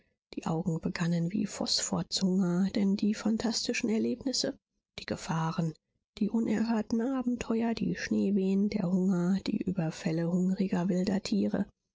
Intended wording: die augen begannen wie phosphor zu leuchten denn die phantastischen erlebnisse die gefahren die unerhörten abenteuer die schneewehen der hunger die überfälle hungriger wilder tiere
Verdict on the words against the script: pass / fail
fail